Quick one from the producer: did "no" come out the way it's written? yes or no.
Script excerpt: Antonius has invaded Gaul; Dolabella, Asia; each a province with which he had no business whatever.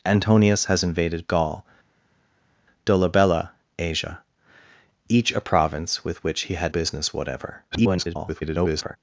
no